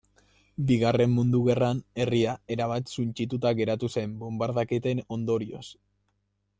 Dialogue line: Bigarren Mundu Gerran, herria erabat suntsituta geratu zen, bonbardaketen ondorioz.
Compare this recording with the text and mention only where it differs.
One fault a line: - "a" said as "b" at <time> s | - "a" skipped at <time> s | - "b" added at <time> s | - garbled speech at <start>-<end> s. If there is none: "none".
none